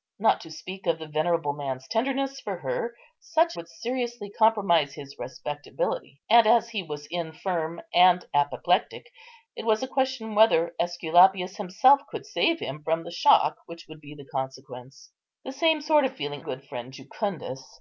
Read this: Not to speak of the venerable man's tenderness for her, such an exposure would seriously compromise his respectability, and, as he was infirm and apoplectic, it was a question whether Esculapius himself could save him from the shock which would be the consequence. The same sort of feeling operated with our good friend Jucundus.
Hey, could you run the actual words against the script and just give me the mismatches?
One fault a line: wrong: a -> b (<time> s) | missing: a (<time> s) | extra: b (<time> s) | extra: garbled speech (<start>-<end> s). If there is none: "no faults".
missing: an exposure (3.5 s)
missing: operated with our (16.4 s)